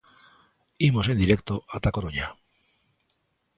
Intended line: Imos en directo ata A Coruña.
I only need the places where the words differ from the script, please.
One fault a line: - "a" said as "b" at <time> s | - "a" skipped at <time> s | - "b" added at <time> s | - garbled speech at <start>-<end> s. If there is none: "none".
none